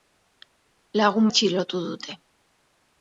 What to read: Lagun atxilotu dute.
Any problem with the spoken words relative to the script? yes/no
no